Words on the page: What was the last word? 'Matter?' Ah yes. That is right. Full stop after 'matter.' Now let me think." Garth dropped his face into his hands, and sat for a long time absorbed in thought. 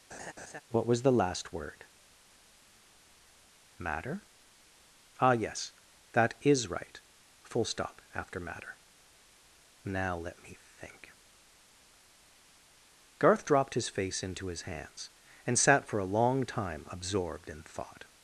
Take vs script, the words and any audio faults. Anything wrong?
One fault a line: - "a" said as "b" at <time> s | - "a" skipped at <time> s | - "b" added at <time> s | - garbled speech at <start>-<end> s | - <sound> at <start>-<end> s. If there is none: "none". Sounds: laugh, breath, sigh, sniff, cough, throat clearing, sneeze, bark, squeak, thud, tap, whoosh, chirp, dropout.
- laugh at 0.1-0.6 s